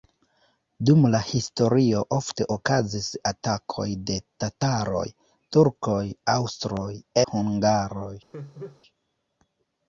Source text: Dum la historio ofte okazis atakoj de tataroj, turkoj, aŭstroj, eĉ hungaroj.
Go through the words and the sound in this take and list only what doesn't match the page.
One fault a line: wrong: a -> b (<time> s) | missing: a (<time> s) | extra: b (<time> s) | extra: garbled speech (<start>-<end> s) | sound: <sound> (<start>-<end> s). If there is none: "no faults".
missing: eĉ (6.9 s)
sound: laugh (8.3-8.8 s)